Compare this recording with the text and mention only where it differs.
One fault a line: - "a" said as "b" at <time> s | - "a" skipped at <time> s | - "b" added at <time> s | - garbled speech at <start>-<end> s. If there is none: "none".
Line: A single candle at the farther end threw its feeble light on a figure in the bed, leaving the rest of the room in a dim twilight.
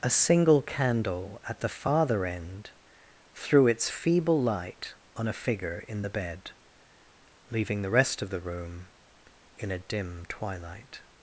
none